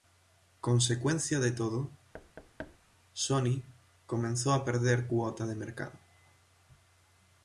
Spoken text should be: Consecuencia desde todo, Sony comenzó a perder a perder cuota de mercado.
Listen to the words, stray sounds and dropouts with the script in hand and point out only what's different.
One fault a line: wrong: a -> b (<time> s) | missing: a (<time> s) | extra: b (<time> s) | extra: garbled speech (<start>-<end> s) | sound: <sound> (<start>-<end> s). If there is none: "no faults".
wrong: desde -> de (1.4 s)
sound: thud (2.1-2.8 s)
missing: a perder (5.1 s)